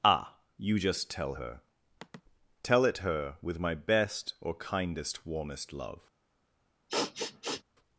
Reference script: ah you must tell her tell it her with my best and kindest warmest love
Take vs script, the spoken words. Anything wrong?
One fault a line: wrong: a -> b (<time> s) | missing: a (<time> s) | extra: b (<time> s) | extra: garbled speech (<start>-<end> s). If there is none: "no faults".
wrong: must -> just (0.8 s)
wrong: and -> or (4.4 s)